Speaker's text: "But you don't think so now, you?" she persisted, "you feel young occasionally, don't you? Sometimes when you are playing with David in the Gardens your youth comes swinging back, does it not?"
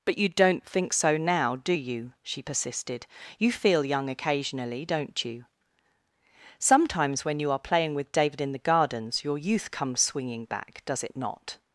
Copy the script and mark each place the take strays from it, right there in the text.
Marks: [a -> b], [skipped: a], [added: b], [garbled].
"But you don't think so now, [added: do] you?" she persisted, "you feel young occasionally, don't you? Sometimes when you are playing with David in the Gardens your youth comes swinging back, does it not?"